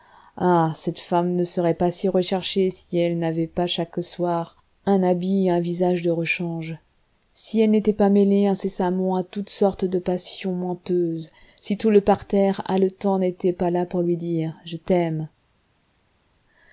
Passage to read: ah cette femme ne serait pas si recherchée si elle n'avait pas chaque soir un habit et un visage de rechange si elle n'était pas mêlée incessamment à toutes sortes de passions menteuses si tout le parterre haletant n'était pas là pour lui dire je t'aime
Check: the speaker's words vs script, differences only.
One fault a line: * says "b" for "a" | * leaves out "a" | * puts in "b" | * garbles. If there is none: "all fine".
all fine